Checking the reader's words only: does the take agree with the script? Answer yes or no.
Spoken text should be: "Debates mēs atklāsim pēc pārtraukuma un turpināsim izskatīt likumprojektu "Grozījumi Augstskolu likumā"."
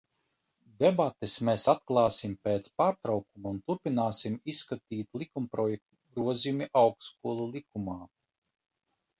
yes